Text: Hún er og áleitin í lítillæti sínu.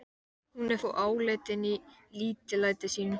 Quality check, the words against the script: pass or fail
pass